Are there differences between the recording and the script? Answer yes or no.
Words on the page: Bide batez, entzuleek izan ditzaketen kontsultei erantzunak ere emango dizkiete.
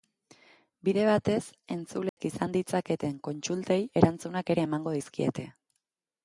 no